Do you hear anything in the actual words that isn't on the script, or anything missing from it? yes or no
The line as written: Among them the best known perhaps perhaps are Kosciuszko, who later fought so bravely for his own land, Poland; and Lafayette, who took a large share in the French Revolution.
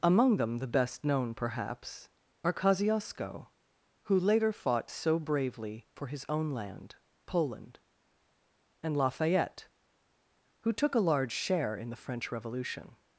yes